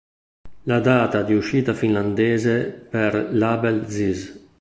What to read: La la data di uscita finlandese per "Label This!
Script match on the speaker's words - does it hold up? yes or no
no